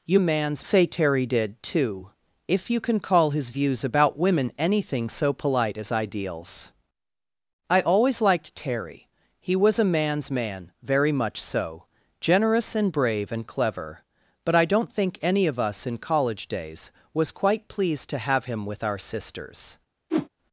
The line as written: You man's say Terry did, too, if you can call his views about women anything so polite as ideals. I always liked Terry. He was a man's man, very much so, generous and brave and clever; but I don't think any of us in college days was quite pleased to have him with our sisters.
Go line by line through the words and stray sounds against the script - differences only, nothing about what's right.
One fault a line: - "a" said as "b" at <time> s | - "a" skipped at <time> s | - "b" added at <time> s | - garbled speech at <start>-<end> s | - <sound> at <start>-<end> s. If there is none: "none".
- whoosh at 20.1-20.3 s